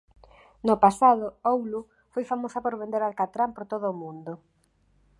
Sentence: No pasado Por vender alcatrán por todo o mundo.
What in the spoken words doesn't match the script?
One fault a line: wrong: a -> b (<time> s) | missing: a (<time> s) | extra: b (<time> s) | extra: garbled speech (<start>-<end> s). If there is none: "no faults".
extra: Oulu foi famosa (1.5 s)